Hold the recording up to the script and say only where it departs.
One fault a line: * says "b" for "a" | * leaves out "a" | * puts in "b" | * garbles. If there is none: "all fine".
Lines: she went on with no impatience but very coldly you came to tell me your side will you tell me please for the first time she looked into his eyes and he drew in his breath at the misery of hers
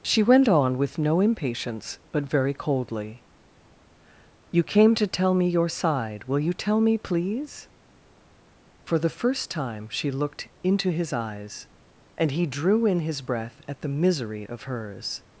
all fine